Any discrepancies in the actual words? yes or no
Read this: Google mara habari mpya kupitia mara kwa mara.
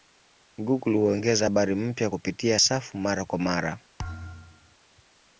yes